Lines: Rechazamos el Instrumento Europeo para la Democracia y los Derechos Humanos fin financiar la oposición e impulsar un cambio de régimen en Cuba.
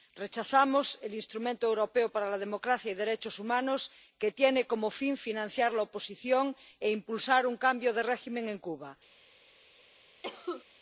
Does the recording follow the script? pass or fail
fail